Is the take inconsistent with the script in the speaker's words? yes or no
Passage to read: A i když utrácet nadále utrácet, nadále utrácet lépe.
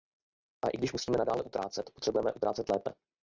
yes